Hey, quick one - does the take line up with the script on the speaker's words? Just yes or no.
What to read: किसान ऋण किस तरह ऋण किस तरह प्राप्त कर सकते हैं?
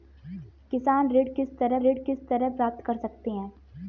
yes